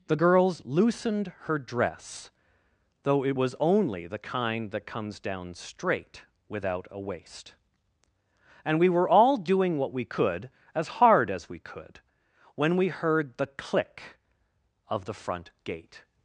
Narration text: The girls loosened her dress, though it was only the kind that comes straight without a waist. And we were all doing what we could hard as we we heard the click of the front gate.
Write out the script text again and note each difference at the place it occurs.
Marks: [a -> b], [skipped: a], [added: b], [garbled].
The girls loosened her dress, though it was only the kind that comes [added: down] straight without a waist. And we were all doing what we could [added: as] hard as we [added: could when] we heard the click of the front gate.